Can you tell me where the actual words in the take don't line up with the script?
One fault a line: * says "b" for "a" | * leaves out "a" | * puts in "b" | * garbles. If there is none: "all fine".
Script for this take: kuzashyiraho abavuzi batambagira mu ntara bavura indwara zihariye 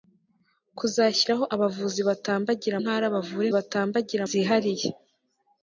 * leaves out "mu"
* says "batambagira" for "indwara"